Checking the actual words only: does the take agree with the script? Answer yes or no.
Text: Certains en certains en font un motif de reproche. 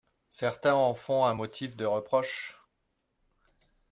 no